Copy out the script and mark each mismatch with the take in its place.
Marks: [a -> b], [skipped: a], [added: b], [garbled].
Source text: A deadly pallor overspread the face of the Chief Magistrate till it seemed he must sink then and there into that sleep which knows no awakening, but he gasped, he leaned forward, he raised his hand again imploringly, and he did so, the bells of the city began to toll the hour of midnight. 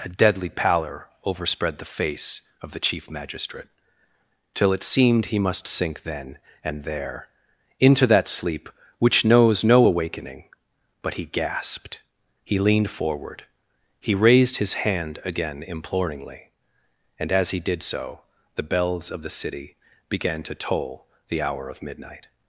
A deadly pallor overspread the face of the Chief Magistrate till it seemed he must sink then and there into that sleep which knows no awakening, but he gasped, he leaned forward, he raised his hand again imploringly, and [added: as] he did so, the bells of the city began to toll the hour of midnight.